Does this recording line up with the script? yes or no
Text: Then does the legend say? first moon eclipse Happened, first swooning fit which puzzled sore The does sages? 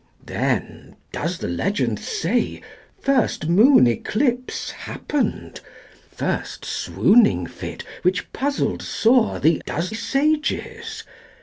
yes